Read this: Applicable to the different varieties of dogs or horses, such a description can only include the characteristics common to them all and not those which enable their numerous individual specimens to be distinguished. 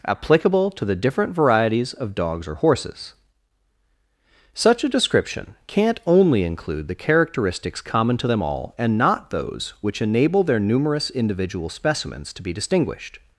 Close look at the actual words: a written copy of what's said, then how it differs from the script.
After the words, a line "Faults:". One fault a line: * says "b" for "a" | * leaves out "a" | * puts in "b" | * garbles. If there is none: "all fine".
Applicable to the different varieties of dogs or horses, such a description can't only include the characteristics common to them all and not those which enable their numerous individual specimens to be distinguished.
Faults:
* says "can't" for "can"